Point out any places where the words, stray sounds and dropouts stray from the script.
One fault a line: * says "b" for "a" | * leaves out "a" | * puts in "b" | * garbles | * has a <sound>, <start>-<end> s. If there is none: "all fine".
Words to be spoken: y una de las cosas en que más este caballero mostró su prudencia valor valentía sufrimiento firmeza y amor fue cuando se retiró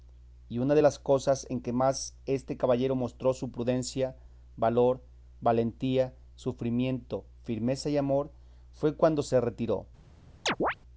* has a chirp, 10.5-10.7 s